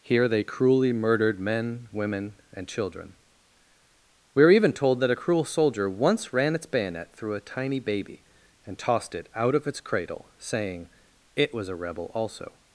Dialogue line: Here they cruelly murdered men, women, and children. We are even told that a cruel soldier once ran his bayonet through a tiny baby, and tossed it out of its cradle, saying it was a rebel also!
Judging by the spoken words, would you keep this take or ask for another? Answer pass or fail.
fail